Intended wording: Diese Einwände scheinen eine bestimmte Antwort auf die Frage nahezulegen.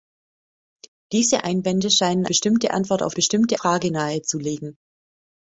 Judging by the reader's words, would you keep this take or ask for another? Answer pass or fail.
fail